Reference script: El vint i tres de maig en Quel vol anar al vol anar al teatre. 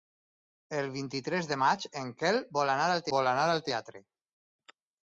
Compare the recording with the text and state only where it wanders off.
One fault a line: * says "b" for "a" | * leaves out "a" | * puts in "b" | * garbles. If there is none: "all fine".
all fine